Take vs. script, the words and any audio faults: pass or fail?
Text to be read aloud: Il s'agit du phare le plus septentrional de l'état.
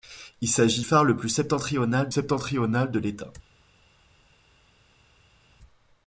fail